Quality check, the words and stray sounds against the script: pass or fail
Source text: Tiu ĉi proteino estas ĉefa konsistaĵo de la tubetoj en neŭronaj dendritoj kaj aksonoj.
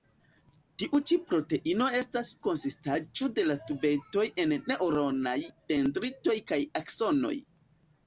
fail